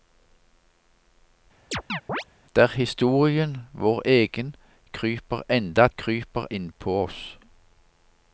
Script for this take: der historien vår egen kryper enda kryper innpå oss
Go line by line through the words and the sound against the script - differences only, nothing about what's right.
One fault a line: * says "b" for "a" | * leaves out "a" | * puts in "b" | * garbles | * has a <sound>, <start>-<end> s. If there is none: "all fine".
* has a chirp, 1.7-2.2 s